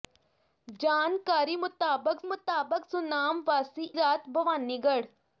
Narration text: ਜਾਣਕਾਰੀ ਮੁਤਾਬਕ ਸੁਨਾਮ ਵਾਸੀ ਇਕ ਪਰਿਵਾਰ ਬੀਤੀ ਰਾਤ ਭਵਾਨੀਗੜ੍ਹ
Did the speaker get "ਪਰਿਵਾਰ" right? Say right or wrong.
wrong